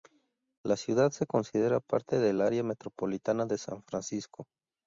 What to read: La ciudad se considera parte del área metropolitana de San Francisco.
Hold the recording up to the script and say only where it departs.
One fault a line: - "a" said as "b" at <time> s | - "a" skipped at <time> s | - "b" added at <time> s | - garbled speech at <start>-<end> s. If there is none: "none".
none